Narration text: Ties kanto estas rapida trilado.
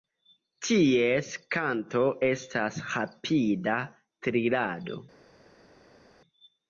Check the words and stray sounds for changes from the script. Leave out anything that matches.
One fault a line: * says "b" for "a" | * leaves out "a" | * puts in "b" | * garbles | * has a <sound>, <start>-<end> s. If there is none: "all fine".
all fine